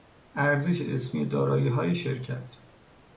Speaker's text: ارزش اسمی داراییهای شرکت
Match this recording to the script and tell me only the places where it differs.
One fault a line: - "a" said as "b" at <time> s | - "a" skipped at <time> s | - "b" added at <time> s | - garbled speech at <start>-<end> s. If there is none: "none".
none